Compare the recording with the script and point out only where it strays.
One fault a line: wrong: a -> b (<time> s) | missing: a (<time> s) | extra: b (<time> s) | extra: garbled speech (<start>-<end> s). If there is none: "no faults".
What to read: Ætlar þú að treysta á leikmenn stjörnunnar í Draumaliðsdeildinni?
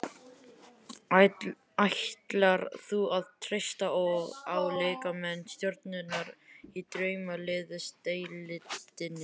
no faults